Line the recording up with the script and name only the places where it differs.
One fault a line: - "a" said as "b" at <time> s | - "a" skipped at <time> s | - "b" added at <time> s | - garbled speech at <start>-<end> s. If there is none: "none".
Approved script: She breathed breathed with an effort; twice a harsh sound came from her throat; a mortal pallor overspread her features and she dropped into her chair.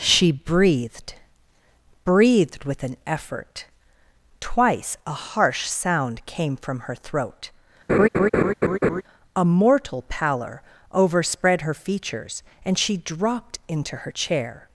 none